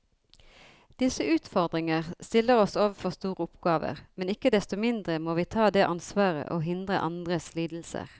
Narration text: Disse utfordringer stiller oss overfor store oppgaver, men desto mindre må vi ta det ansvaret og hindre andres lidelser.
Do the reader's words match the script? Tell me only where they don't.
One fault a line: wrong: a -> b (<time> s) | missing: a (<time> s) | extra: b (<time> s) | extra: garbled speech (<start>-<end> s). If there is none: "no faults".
extra: ikke (4.3 s)